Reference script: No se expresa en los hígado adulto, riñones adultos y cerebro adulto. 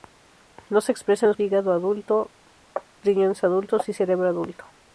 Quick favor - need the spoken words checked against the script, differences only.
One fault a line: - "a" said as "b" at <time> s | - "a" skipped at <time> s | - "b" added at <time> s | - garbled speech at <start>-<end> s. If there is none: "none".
none